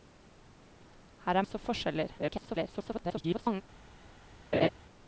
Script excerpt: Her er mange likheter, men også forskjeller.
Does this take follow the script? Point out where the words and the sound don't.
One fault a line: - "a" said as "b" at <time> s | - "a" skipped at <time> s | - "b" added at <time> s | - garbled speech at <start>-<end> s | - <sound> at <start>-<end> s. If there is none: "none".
- "mange likheter men" skipped at 1.4 s
- garbled speech at 2.2-3.6 s
- laugh at 4.5-4.7 s